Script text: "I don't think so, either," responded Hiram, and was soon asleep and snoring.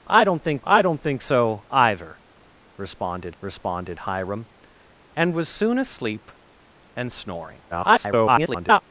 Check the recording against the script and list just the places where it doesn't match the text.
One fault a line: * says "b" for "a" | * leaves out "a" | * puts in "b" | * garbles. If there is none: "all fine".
* puts in "I don't think"
* puts in "responded"
* garbles